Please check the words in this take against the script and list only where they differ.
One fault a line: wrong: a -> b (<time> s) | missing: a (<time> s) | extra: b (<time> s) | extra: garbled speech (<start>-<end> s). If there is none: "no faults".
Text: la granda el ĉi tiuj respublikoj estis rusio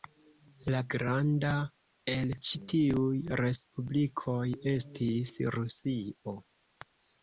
no faults